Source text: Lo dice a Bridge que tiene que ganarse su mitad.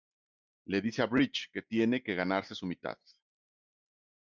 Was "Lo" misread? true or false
true